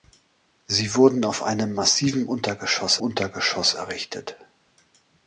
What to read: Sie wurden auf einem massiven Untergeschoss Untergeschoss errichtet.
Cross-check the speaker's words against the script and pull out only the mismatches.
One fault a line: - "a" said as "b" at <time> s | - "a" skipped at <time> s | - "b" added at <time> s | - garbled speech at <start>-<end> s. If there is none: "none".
none